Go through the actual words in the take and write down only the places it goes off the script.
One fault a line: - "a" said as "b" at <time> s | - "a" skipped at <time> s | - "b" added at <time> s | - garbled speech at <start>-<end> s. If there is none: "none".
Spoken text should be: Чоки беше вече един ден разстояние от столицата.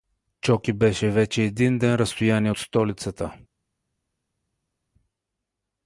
- "от" skipped at 2.5 s